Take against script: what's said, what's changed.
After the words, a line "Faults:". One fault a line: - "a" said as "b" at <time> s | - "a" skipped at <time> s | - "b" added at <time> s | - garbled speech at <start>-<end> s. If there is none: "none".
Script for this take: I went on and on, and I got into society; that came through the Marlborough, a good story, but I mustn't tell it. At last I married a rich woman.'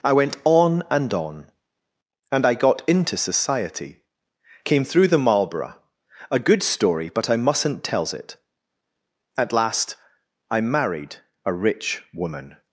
I went on and on, and I got into society; came through the Marlborough, a good story, but I mustn't tells it. At last I married a rich woman.'
Faults:
- "that" skipped at 4.0 s
- "tell" said as "tells" at 7.8 s